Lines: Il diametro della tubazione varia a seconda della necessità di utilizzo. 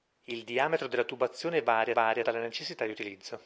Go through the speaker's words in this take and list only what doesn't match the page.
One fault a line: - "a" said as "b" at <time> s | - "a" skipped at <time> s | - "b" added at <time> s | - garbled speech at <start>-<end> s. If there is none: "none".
- "seconda" said as "varia" at 1.9 s